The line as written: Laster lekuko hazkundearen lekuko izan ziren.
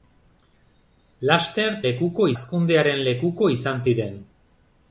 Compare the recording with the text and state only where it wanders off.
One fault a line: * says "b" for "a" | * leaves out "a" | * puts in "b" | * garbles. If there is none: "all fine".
all fine